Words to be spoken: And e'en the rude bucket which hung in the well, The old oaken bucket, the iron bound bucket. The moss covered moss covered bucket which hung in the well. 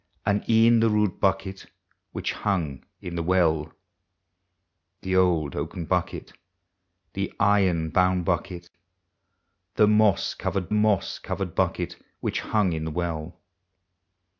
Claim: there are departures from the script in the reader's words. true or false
false